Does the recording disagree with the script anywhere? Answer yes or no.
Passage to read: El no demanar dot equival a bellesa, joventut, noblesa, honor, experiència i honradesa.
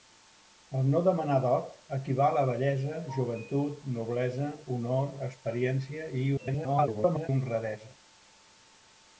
yes